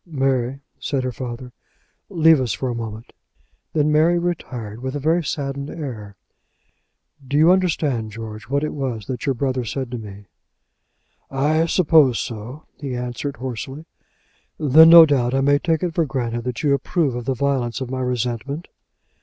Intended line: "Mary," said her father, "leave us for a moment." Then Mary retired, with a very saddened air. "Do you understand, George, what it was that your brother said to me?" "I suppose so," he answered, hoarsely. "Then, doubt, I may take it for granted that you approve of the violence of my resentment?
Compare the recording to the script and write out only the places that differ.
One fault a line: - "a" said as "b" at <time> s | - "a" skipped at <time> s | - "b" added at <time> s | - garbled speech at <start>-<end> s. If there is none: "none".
- "no" added at 14.9 s